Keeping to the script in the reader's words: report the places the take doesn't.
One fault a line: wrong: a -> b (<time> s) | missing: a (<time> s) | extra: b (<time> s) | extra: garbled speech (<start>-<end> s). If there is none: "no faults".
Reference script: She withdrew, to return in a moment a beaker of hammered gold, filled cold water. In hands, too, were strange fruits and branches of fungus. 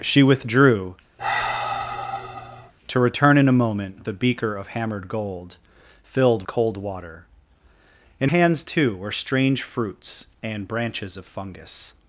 no faults